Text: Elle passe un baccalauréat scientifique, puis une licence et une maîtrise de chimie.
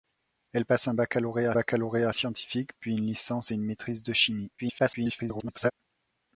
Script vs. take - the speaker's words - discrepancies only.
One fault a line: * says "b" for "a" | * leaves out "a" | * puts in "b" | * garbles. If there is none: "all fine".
* puts in "baccalauréat"
* garbles